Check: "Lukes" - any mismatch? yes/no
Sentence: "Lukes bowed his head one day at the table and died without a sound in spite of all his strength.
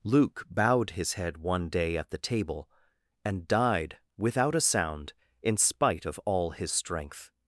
yes